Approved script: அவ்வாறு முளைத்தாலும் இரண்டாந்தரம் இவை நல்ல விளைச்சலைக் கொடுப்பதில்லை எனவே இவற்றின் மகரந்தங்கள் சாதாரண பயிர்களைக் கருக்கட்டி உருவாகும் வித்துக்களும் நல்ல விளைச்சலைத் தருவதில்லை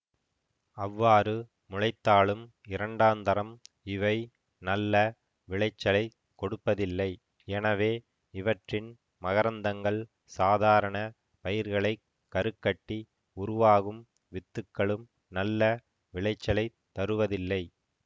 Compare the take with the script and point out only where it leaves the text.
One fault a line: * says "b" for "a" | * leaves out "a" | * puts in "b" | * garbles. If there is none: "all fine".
all fine